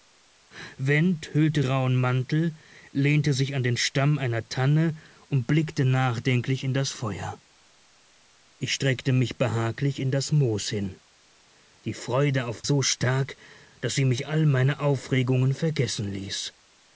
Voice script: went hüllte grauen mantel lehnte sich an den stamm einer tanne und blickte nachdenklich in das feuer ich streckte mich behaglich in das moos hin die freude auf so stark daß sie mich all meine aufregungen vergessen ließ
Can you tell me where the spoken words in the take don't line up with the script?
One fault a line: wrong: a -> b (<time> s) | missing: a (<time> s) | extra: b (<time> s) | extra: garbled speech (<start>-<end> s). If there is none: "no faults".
no faults